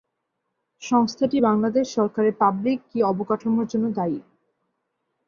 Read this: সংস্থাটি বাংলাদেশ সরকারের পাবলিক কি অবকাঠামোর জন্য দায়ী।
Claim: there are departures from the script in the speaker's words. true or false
false